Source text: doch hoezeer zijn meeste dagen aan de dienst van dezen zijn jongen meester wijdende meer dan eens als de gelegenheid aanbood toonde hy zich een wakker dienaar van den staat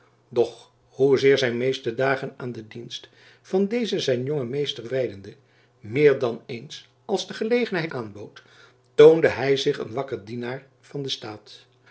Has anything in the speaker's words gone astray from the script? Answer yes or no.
no